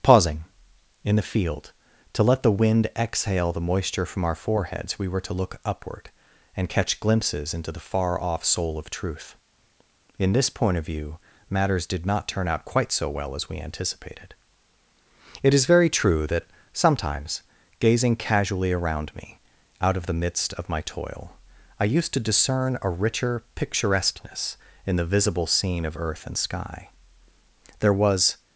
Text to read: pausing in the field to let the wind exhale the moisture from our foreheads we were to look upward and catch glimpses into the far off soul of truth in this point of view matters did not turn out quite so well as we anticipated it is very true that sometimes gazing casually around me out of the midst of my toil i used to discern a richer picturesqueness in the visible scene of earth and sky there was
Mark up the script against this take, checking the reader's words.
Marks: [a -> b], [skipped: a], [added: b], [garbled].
pausing in the field to let the wind exhale the moisture from our foreheads we were to look upward and catch glimpses into the far off soul of truth in this point of view matters did not turn out quite so well as we anticipated it is very true that sometimes gazing casually around me out of the midst of my toil i used to discern a richer picturesqueness in the visible scene of earth and sky there was